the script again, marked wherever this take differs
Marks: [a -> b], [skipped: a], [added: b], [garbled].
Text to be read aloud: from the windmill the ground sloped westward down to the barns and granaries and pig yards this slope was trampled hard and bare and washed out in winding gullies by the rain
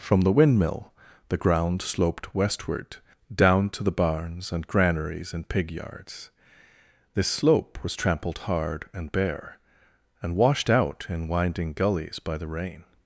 from the windmill the ground sloped westward down to the barns and granaries and pig yards this slope was trampled hard and bare and washed out in winding gullies by the rain